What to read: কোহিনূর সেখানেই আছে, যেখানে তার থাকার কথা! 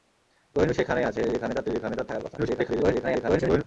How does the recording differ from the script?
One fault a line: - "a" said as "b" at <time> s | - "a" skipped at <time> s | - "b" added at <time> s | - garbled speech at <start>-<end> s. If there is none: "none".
- "যেখানে তার" added at 1.7 s
- garbled speech at 2.4-3.6 s